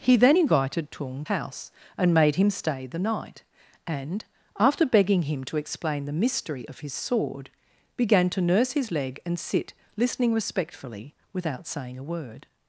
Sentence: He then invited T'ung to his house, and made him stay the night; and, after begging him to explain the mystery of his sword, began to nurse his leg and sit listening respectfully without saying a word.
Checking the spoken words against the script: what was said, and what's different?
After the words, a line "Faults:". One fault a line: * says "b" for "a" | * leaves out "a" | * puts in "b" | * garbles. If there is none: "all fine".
He then invited T'ung house, and made him stay the night; and, after begging him to explain the mystery of his sword, began to nurse his leg and sit listening respectfully without saying a word.
Faults:
* leaves out "to his"